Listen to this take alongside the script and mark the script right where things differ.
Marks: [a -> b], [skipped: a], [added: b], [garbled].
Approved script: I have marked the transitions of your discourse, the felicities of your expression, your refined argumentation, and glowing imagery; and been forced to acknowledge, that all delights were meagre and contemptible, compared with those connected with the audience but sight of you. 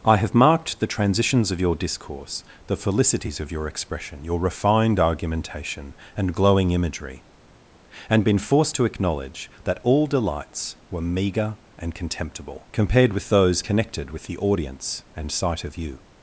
I have marked the transitions of your discourse, the felicities of your expression, your refined argumentation, and glowing imagery; and been forced to acknowledge, that all delights were meagre and contemptible, compared with those connected with the audience [but -> and] sight of you.